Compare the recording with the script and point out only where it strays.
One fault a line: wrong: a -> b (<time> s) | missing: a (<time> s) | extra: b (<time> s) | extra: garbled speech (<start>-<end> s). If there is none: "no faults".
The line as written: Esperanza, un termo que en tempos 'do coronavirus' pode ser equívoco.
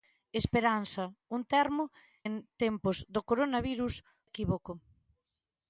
missing: que (1.8 s)
missing: pode ser (4.0 s)